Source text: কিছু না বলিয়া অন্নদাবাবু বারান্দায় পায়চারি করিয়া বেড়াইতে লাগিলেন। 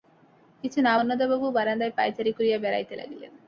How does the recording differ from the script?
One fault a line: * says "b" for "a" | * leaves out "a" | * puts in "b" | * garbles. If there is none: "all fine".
* leaves out "বলিয়া"